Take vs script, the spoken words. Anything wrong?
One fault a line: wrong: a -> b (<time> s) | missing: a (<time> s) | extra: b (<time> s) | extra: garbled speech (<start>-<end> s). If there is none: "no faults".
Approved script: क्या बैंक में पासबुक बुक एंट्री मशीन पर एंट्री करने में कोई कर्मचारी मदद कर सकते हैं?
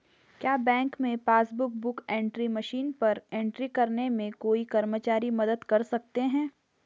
no faults